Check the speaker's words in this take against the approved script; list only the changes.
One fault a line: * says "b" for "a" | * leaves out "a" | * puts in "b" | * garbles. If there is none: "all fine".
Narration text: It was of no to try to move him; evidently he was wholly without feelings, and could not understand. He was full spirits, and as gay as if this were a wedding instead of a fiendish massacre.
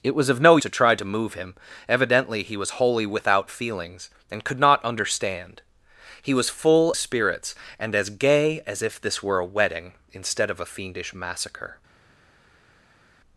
all fine